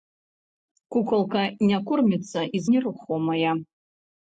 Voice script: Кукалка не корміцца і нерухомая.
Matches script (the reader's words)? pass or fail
pass